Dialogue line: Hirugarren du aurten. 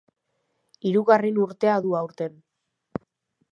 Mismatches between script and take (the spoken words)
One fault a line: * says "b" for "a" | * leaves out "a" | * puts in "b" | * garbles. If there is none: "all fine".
* puts in "urtea"